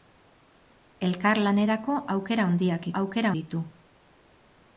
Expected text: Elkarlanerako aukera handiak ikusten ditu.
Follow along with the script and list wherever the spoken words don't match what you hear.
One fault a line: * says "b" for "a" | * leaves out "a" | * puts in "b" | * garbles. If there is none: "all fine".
* says "aukera" for "ikusten"